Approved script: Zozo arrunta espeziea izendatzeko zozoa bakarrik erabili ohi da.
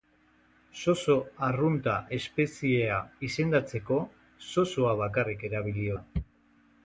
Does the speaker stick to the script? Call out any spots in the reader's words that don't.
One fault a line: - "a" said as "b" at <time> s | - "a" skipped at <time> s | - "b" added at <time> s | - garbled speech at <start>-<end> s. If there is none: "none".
- "ohi" skipped at 5.9 s